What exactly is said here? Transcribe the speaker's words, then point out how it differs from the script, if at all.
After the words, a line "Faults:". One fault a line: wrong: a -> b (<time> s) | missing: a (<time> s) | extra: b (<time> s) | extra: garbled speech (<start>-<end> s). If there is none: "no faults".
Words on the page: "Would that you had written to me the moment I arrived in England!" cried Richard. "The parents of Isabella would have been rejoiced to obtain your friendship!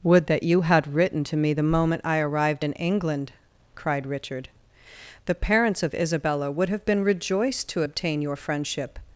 "Would that you had written to me the moment I arrived in England!" cried Richard. "The parents of Isabella would have been rejoiced to obtain your friendship!
Faults:
no faults